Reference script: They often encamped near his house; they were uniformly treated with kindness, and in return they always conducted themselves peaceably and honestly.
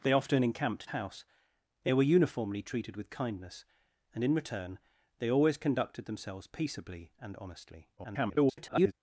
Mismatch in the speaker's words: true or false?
true